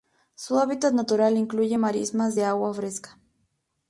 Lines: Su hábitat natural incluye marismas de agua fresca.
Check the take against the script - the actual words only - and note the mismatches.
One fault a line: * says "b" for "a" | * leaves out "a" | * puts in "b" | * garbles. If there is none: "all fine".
all fine